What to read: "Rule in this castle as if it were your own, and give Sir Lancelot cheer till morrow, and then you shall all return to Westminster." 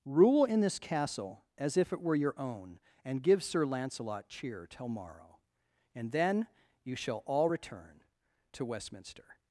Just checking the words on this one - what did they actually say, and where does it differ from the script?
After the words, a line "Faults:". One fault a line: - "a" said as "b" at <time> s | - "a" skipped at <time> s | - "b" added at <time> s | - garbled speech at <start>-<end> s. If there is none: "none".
"Rule in this castle as if it were your own, and give Sir Lancelot cheer till morrow, and then you shall all return to Westminster."
Faults:
none